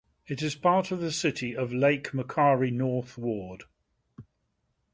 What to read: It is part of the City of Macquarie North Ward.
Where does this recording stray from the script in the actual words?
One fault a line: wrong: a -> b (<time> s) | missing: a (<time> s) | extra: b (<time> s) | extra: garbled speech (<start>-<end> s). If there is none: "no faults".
extra: Lake (1.7 s)